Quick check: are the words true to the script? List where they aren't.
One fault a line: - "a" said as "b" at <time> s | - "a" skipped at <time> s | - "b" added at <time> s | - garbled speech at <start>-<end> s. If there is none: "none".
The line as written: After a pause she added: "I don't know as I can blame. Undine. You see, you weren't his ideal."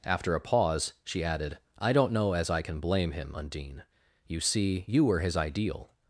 - "him" added at 3.1 s
- "weren't" said as "were" at 5.1 s